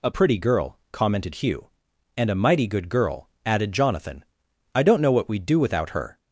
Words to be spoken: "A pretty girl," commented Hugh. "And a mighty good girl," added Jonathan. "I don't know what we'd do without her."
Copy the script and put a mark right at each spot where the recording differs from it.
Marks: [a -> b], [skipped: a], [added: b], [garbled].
"A pretty girl," commented Hugh. "And a mighty good girl," added Jonathan. "I don't know what we'd do without her."